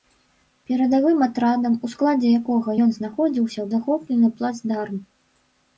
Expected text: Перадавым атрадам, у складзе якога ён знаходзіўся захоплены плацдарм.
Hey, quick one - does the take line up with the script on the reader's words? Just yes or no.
yes